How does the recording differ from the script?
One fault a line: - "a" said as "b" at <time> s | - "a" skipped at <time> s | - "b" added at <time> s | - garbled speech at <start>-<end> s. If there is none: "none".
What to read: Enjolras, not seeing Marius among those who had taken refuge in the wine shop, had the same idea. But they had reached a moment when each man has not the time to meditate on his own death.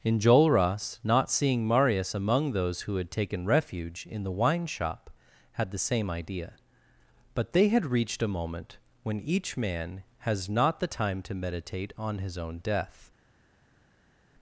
none